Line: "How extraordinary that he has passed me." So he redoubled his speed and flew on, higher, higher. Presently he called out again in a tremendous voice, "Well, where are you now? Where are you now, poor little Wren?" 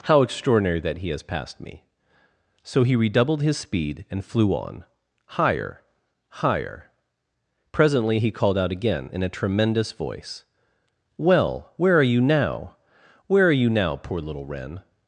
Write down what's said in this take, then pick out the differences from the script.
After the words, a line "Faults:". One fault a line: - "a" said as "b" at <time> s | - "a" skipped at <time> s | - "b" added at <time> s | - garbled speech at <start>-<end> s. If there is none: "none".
"How extraordinary that he has passed me." So he redoubled his speed and flew on, higher, higher. Presently he called out again in a tremendous voice, "Well, where are you now? Where are you now, poor little Wren?"
Faults:
none